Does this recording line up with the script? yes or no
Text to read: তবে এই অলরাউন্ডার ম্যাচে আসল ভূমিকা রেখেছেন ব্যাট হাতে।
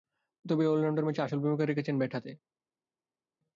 yes